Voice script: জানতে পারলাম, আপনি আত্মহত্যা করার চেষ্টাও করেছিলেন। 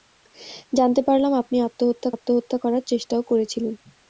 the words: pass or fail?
fail